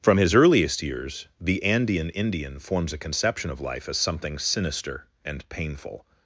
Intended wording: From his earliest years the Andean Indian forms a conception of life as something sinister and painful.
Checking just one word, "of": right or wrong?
right